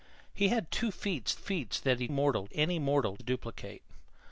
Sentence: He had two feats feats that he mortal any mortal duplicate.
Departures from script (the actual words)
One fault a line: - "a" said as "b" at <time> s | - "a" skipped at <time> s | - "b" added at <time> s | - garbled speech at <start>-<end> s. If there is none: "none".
none